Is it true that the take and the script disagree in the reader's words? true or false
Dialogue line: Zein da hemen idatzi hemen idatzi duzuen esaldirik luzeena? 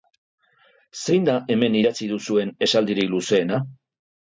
true